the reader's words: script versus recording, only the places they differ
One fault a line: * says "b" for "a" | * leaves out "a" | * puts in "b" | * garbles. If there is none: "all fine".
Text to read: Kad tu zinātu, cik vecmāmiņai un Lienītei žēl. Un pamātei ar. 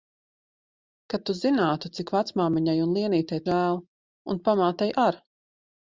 all fine